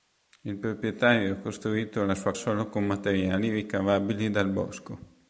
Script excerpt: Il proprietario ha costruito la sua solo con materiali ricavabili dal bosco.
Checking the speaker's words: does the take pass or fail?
pass